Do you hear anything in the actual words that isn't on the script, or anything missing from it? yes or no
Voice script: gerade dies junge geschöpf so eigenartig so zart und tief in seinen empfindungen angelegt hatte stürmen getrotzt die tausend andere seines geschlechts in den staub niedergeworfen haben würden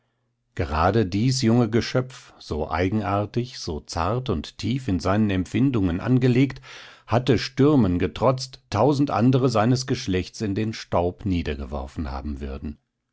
yes